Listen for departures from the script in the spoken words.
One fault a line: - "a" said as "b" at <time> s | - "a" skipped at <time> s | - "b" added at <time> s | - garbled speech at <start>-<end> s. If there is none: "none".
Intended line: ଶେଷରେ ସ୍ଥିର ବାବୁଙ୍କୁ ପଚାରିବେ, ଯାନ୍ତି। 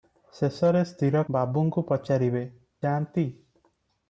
none